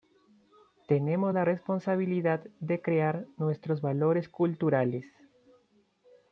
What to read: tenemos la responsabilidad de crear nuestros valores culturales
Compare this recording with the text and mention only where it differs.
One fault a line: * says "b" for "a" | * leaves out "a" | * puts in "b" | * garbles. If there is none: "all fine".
all fine